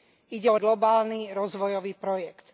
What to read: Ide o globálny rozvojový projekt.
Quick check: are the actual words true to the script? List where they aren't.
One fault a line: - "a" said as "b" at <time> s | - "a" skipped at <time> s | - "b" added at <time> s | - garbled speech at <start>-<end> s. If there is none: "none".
none